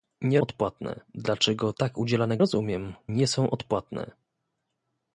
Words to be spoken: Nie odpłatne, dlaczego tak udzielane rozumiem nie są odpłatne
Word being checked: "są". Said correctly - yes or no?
yes